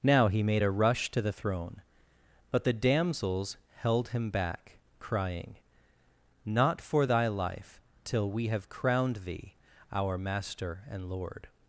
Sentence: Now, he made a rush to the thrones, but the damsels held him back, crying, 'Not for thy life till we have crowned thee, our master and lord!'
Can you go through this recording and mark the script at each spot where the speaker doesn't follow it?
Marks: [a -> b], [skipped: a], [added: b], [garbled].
Now, he made a rush to the [thrones, -> throne] but the damsels held him back, crying, 'Not for thy life till we have crowned thee, our master and lord!'